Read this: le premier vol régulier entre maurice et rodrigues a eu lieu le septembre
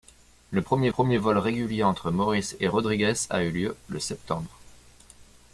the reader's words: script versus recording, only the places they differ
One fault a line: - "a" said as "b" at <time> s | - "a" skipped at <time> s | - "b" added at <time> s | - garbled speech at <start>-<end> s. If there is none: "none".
- "premier" added at 0.9 s